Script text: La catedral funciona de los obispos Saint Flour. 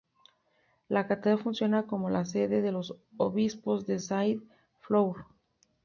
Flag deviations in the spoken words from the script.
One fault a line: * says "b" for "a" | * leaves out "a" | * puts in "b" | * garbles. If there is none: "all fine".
* puts in "como la sede"
* puts in "de"